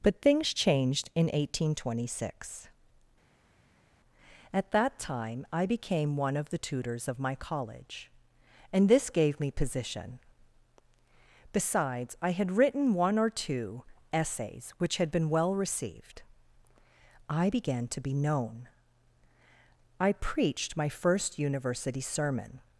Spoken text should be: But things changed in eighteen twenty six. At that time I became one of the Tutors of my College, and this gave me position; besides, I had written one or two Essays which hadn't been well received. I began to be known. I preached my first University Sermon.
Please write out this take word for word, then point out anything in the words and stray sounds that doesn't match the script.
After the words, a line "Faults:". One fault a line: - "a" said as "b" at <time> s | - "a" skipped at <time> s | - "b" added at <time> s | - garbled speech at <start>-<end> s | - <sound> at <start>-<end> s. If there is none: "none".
But things changed in eighteen twenty six. At that time I became one of the Tutors of my College, and this gave me position; besides, I had written one or two Essays which had been well received. I began to be known. I preached my first University Sermon.
Faults:
- "hadn't" said as "had" at 15.0 s